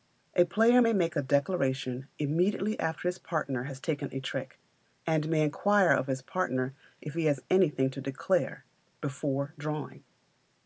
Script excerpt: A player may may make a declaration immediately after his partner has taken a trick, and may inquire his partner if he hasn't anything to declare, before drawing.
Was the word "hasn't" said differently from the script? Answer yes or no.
yes